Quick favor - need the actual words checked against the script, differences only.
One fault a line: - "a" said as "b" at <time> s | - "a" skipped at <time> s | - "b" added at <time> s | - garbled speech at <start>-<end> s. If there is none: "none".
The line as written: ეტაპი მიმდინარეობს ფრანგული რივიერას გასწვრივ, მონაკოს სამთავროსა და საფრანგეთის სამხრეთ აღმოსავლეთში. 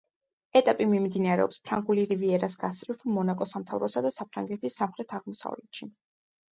none